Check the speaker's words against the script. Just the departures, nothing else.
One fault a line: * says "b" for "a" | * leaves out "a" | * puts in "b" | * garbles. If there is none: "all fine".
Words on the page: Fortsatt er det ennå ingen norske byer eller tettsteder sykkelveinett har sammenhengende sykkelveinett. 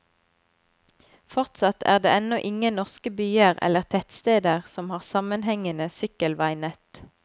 * says "som" for "sykkelveinett"